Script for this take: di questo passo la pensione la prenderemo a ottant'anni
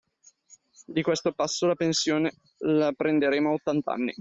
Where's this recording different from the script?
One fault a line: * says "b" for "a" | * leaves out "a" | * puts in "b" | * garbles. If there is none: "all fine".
all fine